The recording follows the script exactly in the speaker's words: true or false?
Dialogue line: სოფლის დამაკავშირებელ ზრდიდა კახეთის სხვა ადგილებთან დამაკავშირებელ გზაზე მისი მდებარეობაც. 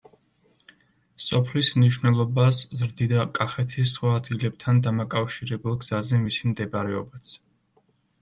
false